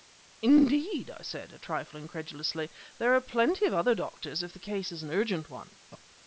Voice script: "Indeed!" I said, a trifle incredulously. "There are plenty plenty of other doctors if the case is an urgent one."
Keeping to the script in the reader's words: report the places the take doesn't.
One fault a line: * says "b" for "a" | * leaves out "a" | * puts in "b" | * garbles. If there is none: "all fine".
* leaves out "plenty"